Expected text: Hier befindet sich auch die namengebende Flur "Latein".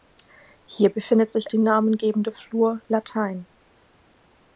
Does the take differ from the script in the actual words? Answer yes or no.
yes